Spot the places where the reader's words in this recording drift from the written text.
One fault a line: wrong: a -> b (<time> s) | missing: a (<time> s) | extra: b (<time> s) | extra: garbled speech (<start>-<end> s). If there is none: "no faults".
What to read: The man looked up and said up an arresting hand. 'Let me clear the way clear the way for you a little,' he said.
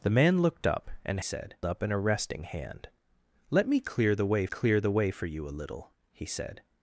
no faults